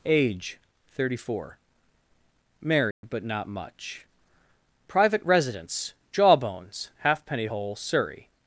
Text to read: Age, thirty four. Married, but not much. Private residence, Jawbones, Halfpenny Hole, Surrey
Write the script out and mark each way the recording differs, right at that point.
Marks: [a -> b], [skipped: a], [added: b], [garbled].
Age, thirty four. Married, but not much. Private residence, Jawbones, Halfpenny Hole, Surrey